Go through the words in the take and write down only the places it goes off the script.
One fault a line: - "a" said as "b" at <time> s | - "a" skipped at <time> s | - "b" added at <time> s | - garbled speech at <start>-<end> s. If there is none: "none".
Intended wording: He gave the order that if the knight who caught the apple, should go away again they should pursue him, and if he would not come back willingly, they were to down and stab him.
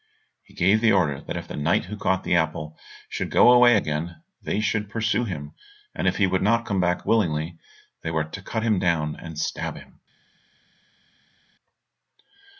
- "cut him" added at 8.4 s